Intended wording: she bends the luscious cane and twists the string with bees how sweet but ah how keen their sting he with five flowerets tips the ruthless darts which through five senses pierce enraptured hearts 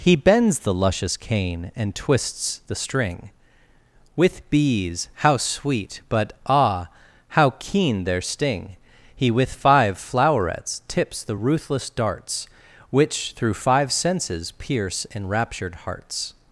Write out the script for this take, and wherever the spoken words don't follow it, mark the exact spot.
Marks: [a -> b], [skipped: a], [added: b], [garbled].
[she -> he] bends the luscious cane and twists the string with bees how sweet but ah how keen their sting he with five flowerets tips the ruthless darts which through five senses pierce enraptured hearts